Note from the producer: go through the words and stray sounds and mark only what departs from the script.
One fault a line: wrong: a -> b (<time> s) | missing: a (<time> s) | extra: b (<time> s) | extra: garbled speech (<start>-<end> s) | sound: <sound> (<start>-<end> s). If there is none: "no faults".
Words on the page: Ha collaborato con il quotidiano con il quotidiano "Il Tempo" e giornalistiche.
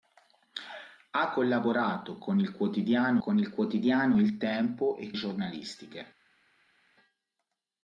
no faults